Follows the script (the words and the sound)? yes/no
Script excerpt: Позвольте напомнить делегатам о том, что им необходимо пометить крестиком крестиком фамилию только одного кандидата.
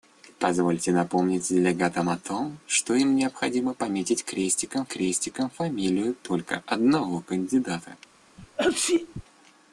no